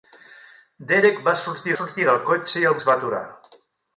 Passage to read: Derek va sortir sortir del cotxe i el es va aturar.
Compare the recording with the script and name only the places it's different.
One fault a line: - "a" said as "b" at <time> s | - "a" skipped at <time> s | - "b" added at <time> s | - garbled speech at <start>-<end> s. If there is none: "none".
none